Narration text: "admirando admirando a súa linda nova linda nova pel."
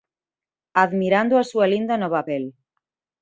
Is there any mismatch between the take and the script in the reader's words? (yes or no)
yes